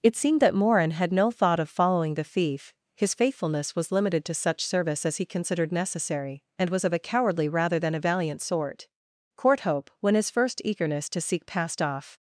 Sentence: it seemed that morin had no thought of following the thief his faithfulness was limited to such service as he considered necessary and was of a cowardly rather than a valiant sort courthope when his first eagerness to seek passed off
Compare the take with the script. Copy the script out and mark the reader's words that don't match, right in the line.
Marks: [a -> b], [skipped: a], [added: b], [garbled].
it seemed that morin had no thought of following the thief his faithfulness was limited to such service as he considered necessary and was of a cowardly rather than a valiant sort courthope when his first eagerness to seek passed off